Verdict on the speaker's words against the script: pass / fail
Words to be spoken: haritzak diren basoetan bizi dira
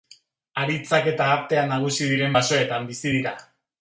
fail